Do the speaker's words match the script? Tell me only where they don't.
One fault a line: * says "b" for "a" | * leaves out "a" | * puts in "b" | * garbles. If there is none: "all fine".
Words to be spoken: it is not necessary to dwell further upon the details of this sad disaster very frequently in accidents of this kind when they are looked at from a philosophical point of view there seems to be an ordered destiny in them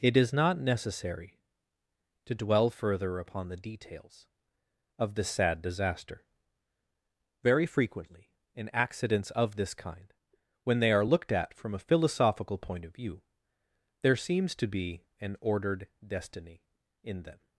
all fine